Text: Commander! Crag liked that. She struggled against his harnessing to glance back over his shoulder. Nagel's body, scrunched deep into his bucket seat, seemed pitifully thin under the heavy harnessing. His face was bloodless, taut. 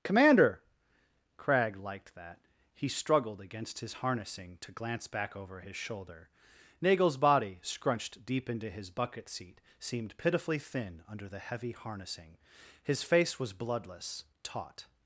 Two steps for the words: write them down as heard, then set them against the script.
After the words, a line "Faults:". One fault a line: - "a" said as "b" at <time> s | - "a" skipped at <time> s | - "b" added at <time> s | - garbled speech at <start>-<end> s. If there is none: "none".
Commander! Crag liked that. He struggled against his harnessing to glance back over his shoulder. Nagel's body, scrunched deep into his bucket seat, seemed pitifully thin under the heavy harnessing. His face was bloodless, taut.
Faults:
- "She" said as "He" at 2.7 s